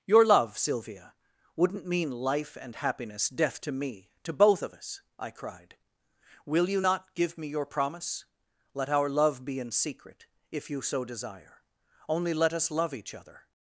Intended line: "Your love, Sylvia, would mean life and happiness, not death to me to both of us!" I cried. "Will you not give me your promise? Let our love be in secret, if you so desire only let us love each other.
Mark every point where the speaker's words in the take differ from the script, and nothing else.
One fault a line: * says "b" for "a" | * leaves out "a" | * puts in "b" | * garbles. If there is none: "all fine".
* says "wouldn't" for "would"
* leaves out "not"